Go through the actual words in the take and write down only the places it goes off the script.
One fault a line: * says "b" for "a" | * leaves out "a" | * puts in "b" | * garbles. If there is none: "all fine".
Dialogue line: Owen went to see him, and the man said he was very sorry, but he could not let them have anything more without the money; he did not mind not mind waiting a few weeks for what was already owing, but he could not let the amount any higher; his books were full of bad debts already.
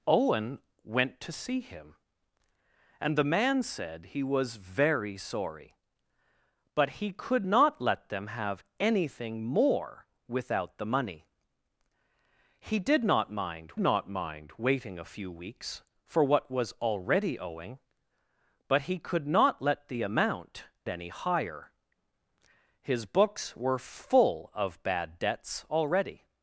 all fine